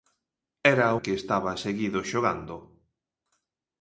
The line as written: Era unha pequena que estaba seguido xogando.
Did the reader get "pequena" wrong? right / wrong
wrong